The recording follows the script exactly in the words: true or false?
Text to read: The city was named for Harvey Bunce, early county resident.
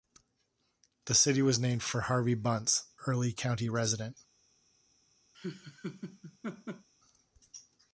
true